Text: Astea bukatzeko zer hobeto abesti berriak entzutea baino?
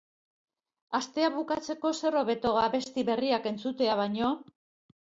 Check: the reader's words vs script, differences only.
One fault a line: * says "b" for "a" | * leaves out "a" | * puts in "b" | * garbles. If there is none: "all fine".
all fine